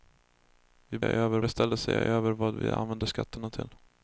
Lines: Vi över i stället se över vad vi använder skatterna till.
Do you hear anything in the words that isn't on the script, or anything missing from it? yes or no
no